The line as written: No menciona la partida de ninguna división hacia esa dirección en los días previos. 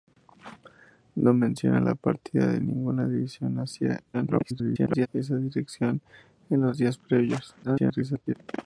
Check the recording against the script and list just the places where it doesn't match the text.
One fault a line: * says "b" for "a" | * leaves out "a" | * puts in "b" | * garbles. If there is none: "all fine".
* garbles
* garbles